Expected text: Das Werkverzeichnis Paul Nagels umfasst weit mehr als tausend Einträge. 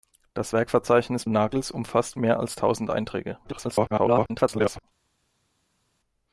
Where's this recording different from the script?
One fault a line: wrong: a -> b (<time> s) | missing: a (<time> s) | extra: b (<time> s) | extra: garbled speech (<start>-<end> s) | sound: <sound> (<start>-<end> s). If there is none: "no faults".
missing: Paul (1.2 s)
missing: weit (2.2 s)
extra: garbled speech (3.4-4.8 s)